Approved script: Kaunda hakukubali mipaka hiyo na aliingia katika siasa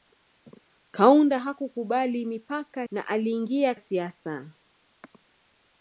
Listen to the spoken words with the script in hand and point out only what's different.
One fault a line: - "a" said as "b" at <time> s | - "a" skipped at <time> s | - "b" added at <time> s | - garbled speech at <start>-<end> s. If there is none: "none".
- "hiyo" skipped at 2.8 s
- "katika" skipped at 3.7 s